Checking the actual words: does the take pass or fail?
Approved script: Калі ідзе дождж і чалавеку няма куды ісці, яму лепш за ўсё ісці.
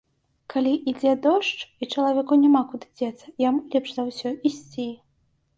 fail